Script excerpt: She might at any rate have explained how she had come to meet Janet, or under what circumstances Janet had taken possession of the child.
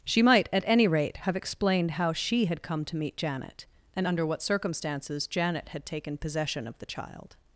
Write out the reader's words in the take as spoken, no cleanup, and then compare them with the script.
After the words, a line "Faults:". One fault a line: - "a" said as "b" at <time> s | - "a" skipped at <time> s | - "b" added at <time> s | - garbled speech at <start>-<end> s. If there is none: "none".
She might at any rate have explained how she had come to meet Janet, and under what circumstances Janet had taken possession of the child.
Faults:
- "or" said as "and" at 4.0 s